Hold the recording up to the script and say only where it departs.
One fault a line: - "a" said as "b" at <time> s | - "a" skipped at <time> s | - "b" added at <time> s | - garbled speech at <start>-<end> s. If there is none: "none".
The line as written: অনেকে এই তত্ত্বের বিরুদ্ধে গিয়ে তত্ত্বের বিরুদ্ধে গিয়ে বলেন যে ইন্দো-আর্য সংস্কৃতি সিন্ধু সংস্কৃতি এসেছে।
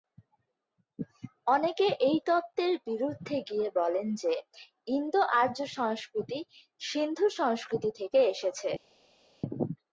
- "তত্ত্বের বিরুদ্ধে গিয়ে" skipped at 3.7 s
- "থেকে" added at 8.0 s